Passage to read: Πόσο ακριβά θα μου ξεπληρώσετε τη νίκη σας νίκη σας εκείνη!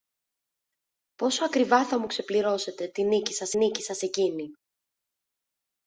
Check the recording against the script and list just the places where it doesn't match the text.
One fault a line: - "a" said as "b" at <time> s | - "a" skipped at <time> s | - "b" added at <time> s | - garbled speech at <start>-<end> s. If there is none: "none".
none